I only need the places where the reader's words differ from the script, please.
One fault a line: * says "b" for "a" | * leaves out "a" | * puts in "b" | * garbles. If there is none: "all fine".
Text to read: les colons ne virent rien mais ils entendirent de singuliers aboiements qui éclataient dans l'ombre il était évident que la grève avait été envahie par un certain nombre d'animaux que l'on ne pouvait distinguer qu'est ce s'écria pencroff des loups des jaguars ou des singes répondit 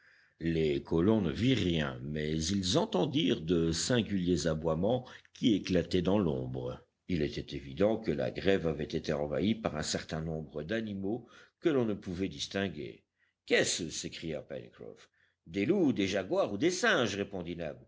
all fine